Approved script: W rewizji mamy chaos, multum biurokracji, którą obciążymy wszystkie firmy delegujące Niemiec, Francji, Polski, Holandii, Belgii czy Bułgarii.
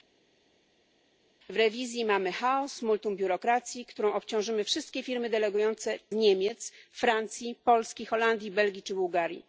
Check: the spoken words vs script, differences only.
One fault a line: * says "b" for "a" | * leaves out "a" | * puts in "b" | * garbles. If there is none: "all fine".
all fine